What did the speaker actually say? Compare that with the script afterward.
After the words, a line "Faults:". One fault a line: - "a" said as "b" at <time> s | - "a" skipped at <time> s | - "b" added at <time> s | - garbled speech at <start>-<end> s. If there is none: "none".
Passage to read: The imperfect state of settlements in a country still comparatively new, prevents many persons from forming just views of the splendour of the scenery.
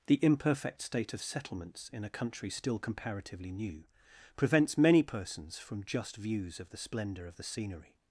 The imperfect state of settlements in a country still comparatively new, prevents many persons from just views of the splendour of the scenery.
Faults:
- "forming" skipped at 5.8 s